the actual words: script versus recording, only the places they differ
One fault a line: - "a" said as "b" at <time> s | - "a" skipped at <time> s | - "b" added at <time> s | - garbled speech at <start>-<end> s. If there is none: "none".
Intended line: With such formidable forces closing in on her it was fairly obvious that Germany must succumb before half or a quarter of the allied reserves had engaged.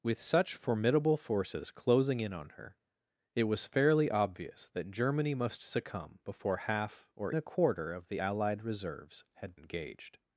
none